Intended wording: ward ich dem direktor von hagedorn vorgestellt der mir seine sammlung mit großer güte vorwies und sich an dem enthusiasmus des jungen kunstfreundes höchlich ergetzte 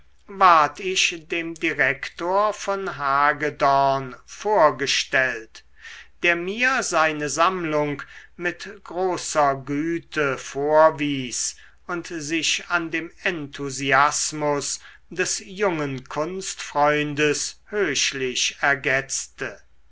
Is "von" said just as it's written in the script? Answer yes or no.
yes